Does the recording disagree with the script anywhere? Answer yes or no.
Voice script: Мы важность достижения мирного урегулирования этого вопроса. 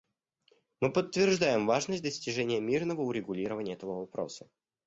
yes